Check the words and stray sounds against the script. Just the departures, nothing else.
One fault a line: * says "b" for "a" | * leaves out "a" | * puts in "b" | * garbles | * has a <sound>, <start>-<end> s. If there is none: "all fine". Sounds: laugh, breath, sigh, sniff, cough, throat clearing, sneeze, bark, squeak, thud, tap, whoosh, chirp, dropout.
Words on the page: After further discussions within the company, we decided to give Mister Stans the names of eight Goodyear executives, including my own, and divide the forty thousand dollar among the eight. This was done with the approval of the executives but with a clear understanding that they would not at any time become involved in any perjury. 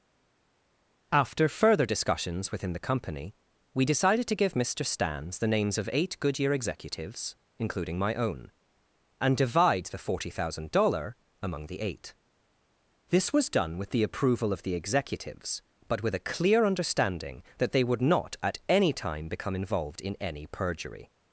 all fine